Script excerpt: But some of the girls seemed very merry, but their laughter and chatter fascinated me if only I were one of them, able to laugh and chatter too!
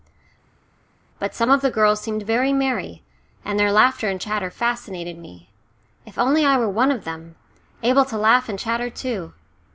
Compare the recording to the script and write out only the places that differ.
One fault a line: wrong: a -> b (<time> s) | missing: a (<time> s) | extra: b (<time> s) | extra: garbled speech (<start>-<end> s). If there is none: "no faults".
wrong: but -> and (3.4 s)